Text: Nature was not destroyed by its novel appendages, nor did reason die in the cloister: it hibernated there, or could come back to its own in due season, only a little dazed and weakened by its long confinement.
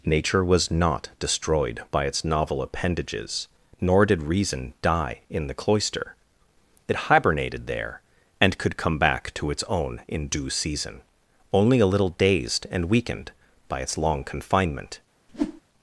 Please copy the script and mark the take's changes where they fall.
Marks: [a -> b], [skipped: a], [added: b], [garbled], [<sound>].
Nature was not destroyed by its novel appendages, nor did reason die in the cloister: it hibernated there, [or -> and] could come back to its own in due season, only a little dazed and weakened by its long confinement. [whoosh]